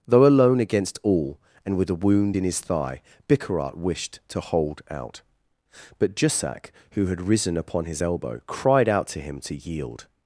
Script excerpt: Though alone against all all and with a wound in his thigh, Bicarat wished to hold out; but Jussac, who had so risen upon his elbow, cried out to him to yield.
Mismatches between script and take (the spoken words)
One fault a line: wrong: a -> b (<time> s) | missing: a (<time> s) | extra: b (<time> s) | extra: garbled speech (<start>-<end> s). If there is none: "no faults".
missing: all (1.4 s)
missing: so (7.2 s)